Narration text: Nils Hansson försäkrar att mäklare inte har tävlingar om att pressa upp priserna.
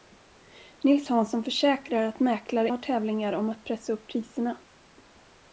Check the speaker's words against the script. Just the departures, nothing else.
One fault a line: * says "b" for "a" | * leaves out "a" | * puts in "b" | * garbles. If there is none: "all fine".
* leaves out "inte"